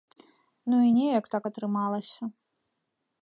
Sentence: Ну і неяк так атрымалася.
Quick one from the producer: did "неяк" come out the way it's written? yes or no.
yes